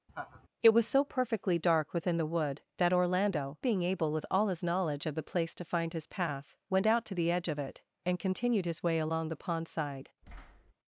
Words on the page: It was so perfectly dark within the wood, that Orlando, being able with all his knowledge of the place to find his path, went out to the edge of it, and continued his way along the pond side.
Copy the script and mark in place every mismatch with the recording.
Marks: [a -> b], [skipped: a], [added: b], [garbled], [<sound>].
[laugh] It was so perfectly dark within the wood, that Orlando, being able with all his knowledge of the place to find his path, went out to the edge of it, and continued his way along the pond side. [thud]